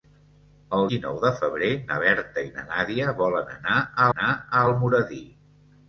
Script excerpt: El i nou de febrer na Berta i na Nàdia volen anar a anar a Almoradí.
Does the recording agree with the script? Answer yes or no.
yes